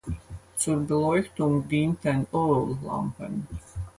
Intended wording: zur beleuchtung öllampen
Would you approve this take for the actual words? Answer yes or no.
no